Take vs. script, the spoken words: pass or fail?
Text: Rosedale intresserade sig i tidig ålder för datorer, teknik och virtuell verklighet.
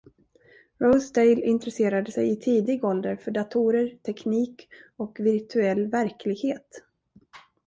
pass